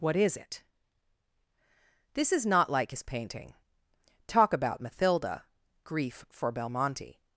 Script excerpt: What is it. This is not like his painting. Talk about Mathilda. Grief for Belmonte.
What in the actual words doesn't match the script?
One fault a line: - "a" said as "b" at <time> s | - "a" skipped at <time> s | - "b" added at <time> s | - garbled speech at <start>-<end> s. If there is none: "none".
none